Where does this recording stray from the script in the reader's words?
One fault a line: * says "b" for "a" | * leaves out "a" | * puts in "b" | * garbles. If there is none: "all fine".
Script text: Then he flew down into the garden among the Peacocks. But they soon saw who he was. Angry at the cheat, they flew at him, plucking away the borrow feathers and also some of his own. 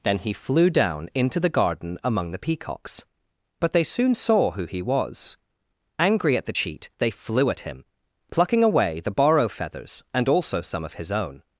all fine